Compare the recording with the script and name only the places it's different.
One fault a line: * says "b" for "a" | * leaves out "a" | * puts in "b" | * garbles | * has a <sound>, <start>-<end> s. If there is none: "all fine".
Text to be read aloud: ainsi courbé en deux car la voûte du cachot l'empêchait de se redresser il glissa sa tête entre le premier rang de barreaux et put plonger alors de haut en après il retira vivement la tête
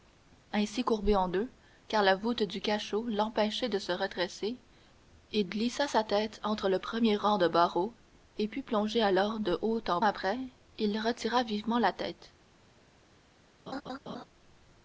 * has a laugh, 13.7-14.2 s